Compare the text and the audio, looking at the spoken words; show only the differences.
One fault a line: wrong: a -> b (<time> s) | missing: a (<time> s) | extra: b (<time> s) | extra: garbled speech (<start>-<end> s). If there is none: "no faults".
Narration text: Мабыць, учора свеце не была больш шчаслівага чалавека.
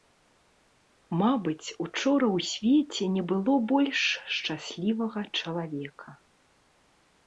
extra: ў (2.4 s)
wrong: была -> было (3.4 s)